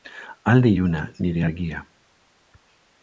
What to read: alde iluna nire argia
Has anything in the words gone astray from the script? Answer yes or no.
no